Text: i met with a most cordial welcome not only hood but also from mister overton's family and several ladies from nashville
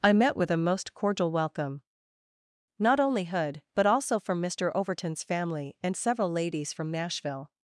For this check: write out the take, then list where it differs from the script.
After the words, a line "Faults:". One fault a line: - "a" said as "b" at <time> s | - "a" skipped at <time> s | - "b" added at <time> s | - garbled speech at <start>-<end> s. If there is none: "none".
i met with a most cordial welcome not only hood but also from mister overton's family and several ladies from nashville
Faults:
none